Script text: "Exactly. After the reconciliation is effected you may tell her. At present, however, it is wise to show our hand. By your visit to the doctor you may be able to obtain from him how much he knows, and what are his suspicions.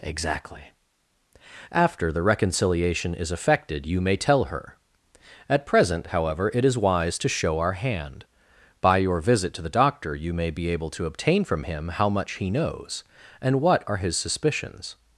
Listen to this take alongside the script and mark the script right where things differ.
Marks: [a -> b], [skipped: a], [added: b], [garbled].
"Exactly. After the reconciliation is effected you may tell her. At present, however, it is wise to show our hand. By your visit to the doctor you may be able to obtain from him how much he knows, and what are his suspicions.